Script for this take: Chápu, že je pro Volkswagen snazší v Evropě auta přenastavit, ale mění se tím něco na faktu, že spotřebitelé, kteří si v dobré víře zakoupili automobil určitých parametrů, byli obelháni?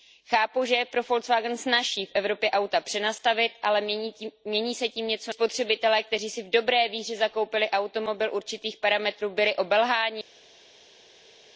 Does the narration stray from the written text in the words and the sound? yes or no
yes